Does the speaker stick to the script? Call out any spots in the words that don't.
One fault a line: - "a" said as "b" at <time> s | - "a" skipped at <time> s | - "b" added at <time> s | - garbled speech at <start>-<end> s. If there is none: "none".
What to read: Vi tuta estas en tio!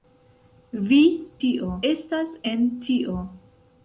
- "tuta" said as "tio" at 1.4 s